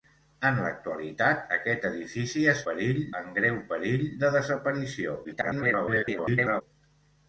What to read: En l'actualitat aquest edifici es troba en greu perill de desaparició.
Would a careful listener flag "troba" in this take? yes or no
yes